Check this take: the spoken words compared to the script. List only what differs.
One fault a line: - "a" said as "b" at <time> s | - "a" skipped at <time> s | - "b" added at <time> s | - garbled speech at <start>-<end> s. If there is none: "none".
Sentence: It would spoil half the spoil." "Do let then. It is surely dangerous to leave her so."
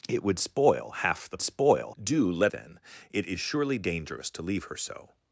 none